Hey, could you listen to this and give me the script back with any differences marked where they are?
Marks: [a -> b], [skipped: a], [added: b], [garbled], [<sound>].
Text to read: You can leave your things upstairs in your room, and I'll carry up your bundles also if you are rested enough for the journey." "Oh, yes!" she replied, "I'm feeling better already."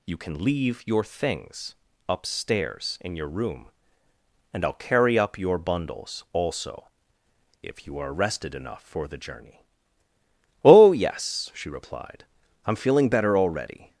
You can leave your things upstairs in your room, and I'll carry up your bundles also if you are rested enough for the journey." "Oh, yes!" she replied, "I'm feeling better already."